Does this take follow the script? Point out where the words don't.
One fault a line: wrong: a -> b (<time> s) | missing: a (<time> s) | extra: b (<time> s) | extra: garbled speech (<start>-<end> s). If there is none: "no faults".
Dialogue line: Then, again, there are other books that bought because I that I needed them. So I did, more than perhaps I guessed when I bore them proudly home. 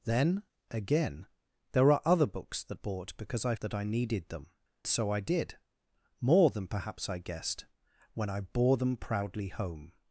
no faults